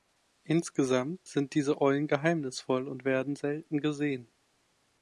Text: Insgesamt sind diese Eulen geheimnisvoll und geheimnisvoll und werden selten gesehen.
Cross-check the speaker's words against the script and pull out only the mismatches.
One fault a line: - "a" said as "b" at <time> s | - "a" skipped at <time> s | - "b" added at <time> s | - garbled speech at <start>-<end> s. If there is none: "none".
- "geheimnisvoll und" skipped at 3.0 s